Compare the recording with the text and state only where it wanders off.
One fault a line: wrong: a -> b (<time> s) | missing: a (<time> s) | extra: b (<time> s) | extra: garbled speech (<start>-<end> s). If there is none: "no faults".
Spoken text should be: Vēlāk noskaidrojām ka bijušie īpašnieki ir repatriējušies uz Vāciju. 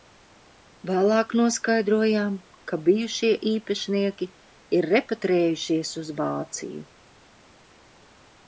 no faults